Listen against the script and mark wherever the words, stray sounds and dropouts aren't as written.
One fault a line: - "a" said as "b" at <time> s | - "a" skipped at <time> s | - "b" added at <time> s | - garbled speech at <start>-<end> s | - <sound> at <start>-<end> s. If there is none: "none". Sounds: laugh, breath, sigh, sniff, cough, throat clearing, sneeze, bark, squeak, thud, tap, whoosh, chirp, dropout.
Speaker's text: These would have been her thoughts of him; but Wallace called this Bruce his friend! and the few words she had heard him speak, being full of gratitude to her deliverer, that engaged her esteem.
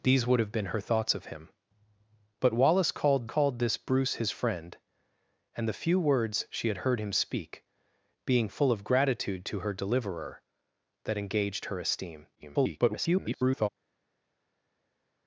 - "called" added at 3.2 s
- garbled speech at 12.4-13.7 s